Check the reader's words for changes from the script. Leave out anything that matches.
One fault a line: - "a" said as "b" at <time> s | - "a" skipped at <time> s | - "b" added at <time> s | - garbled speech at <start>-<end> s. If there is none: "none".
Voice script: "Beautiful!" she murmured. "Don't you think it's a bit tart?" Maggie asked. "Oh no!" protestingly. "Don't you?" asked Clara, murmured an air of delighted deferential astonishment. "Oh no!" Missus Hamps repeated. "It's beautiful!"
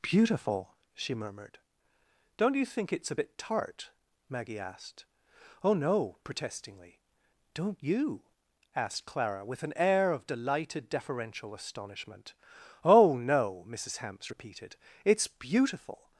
- "murmured" said as "with" at 9.4 s